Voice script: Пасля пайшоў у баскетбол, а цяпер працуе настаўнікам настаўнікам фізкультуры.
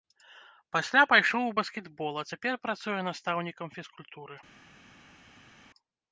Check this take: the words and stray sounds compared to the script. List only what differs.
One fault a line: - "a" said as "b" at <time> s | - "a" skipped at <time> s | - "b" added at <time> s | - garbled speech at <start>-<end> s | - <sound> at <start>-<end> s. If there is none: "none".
- "настаўнікам" skipped at 3.7 s